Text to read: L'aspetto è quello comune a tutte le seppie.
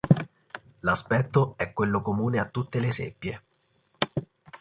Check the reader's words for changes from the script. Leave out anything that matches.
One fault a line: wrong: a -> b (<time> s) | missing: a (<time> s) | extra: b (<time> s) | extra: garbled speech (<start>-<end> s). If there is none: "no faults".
no faults